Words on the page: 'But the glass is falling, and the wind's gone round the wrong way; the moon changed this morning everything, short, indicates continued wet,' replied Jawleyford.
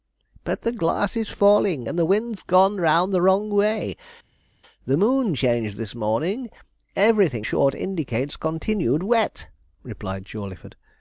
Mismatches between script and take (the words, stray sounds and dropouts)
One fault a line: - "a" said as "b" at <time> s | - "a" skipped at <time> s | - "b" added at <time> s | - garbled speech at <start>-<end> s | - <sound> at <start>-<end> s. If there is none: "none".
none